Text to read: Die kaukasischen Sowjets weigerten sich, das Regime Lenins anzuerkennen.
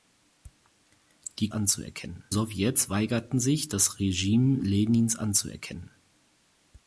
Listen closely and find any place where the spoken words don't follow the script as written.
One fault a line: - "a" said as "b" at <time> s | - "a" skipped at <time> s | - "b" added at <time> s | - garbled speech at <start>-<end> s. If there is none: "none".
- "kaukasischen" said as "anzuerkennen" at 1.5 s